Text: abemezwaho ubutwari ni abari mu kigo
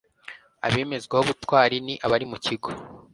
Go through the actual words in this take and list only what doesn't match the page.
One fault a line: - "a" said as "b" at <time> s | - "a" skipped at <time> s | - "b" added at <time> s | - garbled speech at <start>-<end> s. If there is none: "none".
none